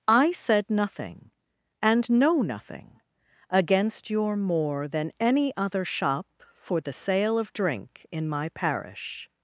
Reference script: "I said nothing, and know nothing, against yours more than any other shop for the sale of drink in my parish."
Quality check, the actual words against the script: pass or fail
fail